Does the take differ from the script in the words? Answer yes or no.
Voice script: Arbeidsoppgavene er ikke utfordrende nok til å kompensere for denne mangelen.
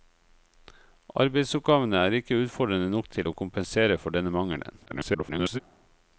yes